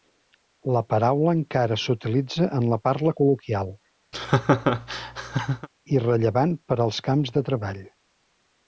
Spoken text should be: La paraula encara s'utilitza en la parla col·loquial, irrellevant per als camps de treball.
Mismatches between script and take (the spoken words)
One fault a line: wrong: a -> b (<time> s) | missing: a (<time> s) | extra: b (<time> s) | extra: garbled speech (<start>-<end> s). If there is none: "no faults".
no faults